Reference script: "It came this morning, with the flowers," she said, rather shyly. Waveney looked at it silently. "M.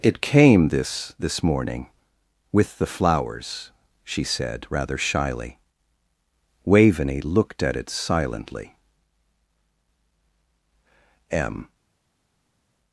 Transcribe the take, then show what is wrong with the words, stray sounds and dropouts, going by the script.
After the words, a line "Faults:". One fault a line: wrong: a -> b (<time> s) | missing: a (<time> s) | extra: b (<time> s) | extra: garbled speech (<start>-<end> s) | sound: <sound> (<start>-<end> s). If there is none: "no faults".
"It came this this morning, with the flowers," she said, rather shyly. Waveney looked at it silently. "M.
Faults:
extra: this (1.2 s)